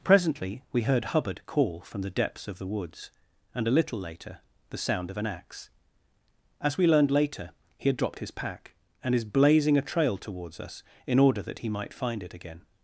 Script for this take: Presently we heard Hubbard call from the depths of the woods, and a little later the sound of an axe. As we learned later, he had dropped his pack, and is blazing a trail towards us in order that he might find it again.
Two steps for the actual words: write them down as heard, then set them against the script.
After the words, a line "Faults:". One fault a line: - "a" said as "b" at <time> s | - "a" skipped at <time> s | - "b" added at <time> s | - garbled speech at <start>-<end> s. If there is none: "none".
Presently we heard Hubbard call from the depths of the woods, and a little later the sound of an axe. As we learned later, he had dropped his pack, and is blazing a trail towards us in order that he might find it again.
Faults:
none